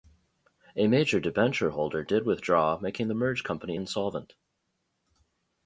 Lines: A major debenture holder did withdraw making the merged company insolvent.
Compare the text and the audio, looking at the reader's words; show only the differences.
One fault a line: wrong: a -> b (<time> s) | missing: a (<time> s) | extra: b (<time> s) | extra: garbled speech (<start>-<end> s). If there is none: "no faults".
no faults